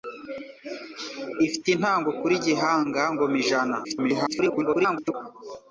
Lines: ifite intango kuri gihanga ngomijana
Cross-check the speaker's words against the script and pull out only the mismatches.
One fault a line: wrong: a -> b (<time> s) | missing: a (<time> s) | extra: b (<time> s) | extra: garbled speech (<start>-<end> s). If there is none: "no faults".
extra: garbled speech (3.8-5.1 s)